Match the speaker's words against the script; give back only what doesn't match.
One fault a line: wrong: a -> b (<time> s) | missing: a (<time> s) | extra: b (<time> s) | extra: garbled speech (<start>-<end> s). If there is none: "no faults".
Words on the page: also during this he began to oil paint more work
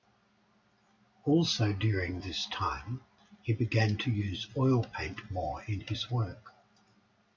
extra: time (2.5 s)
extra: use (4.1 s)
extra: in his (5.7 s)